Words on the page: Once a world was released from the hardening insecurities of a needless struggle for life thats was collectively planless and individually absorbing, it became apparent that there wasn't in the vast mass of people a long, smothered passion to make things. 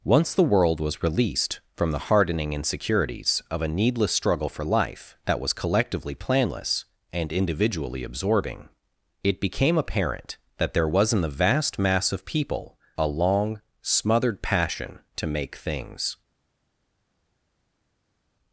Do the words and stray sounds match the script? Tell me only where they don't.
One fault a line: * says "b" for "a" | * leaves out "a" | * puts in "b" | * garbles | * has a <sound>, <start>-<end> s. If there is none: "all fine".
* says "the" for "a"
* says "that" for "thats"
* says "was" for "wasn't"